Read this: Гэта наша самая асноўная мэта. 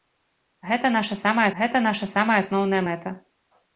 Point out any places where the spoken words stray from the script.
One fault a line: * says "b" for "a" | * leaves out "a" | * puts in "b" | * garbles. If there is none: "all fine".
* puts in "гэта наша самая"